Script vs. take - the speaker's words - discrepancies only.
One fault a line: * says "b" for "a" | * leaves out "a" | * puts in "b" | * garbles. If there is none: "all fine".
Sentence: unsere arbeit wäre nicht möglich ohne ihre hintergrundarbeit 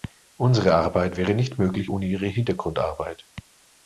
all fine